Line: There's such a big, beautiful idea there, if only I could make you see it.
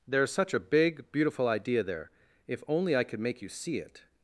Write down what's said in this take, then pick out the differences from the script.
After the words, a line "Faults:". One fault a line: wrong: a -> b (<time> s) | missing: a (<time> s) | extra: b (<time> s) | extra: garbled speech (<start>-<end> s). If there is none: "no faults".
There's such a big, beautiful idea there, if only I could make you see it.
Faults:
no faults